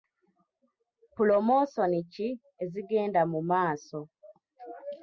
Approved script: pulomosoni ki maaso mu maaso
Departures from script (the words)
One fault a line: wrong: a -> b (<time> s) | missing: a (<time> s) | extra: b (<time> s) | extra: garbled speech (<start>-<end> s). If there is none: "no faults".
wrong: maaso -> ezigenda (2.6 s)